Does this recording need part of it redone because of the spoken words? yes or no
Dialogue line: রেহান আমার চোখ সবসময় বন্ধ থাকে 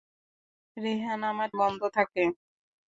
yes